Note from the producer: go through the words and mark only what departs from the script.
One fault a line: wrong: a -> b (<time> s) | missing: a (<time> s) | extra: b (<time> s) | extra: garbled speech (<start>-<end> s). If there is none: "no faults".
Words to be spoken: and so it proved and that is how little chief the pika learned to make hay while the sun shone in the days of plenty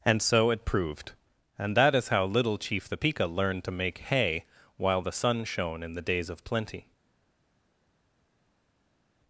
no faults